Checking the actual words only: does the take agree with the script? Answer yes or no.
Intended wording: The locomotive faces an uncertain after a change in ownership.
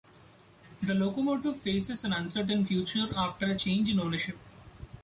no